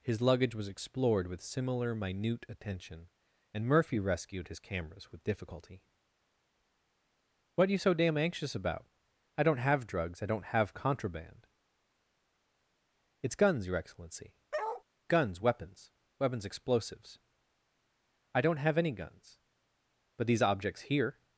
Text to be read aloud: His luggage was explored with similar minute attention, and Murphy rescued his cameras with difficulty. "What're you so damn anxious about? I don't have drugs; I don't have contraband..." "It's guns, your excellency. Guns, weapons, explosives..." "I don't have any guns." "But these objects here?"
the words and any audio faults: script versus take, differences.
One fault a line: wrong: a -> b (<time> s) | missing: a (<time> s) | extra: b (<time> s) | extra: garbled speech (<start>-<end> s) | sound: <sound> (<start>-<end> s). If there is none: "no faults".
sound: bark (14.5-14.8 s)
extra: weapons (16.2 s)